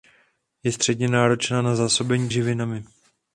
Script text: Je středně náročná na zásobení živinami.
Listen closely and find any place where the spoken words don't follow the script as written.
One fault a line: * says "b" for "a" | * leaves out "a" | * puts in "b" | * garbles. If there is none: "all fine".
all fine